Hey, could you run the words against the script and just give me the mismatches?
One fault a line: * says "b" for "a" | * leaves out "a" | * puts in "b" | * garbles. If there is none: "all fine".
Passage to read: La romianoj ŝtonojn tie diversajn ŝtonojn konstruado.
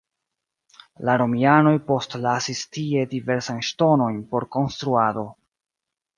* says "postlasis" for "ŝtonojn"
* puts in "por"